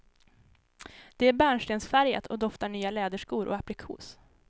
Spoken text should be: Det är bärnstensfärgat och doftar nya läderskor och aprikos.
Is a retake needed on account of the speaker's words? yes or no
no